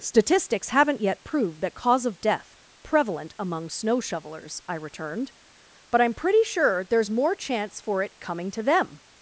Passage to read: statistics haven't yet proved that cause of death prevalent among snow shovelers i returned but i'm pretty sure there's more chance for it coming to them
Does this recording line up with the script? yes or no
yes